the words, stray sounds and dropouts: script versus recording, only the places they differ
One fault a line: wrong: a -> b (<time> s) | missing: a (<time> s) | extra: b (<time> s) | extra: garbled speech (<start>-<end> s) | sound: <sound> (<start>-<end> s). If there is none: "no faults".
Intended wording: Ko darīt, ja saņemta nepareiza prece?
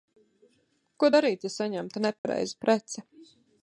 sound: dropout (2.2-2.2 s)